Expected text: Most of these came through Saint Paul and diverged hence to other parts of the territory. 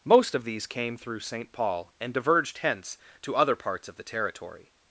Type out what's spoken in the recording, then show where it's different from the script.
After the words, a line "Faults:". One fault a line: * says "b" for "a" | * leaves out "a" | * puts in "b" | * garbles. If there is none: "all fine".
Most of these came through Saint Paul and diverged hence to other parts of the territory.
Faults:
all fine